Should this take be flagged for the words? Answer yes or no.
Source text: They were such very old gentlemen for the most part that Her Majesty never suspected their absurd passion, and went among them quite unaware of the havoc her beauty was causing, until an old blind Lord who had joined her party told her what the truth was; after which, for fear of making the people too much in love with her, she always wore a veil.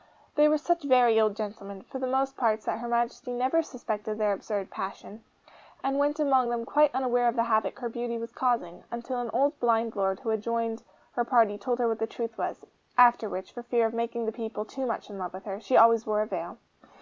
no